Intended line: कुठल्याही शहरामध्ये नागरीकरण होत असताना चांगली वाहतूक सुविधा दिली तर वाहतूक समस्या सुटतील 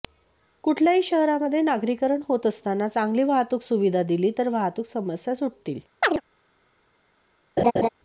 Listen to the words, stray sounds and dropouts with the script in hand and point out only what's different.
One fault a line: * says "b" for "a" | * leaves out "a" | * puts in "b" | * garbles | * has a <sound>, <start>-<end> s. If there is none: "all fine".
* has a chirp, 6.0-6.2 s
* has a laugh, 7.6-7.9 s